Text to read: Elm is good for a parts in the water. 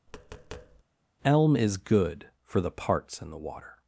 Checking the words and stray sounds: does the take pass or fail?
fail